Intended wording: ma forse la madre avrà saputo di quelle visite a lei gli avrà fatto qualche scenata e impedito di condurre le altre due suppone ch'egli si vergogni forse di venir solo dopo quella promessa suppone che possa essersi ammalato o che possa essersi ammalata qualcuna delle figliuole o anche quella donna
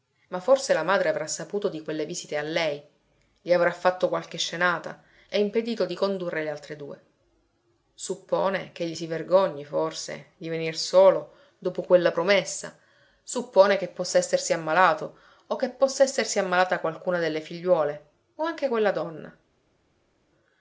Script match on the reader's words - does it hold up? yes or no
yes